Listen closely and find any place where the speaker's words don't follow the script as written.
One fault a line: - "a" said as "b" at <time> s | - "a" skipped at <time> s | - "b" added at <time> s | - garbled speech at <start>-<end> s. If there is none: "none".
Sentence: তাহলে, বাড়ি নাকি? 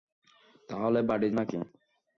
none